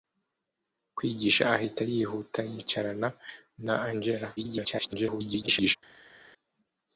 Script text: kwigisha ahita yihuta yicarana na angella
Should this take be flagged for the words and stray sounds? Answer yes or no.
yes